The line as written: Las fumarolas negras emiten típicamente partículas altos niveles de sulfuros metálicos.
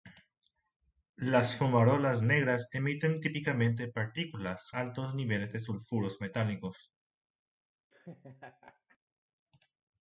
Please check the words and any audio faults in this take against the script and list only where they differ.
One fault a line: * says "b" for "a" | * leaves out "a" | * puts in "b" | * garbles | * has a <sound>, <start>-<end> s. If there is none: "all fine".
* has a laugh, 7.9-9.0 s